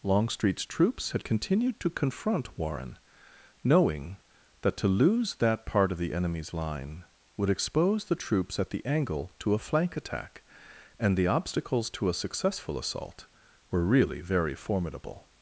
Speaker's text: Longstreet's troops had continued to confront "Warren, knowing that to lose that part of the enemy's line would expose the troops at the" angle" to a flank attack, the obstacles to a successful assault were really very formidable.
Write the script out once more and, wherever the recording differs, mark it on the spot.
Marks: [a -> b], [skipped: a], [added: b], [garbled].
Longstreet's troops had continued to confront "Warren, knowing that to lose that part of the enemy's line would expose the troops at the" angle" to a flank attack, [added: and] the obstacles to a successful assault were really very formidable.